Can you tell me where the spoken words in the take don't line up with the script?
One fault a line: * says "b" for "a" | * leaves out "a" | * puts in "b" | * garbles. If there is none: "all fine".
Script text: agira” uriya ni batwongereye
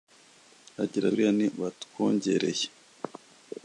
all fine